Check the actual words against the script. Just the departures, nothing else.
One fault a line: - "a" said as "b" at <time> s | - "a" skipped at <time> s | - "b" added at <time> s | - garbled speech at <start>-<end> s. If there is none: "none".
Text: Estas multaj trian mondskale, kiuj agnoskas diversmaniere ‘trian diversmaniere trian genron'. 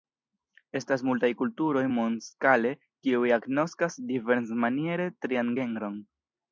- "trian" said as "kulturoj" at 1.4 s
- "diversmaniere trian" skipped at 5.6 s